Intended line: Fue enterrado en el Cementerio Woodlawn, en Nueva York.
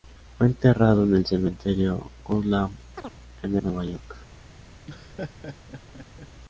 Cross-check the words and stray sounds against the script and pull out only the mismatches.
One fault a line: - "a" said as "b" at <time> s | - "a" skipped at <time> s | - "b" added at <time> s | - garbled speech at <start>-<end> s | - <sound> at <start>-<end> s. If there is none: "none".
- chirp at 3.0-3.2 s
- laugh at 4.9-6.3 s